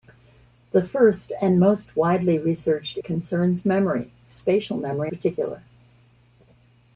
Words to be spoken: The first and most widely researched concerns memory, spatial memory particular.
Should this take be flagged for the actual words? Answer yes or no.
no